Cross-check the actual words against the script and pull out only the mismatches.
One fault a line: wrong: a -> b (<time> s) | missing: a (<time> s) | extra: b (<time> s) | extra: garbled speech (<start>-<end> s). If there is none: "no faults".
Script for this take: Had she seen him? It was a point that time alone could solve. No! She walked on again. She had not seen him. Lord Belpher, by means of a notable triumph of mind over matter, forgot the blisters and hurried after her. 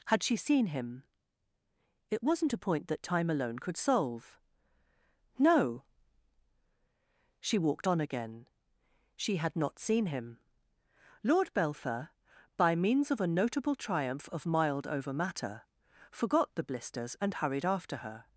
wrong: was -> wasn't (2.2 s)
wrong: mind -> mild (14.5 s)